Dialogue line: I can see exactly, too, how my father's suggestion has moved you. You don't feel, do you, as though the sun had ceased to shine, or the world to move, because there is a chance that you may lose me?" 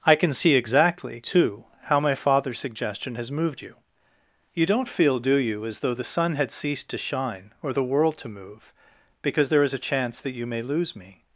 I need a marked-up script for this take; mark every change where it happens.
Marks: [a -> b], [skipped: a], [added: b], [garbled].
I can see exactly, too, how my father's suggestion has moved you. You don't feel, do you, as though the sun had ceased to shine, or the world to move, because there is a chance that you may lose me?"